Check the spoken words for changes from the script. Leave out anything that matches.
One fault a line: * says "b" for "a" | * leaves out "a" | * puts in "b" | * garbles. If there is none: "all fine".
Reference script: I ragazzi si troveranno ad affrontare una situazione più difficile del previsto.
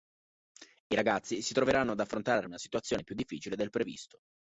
all fine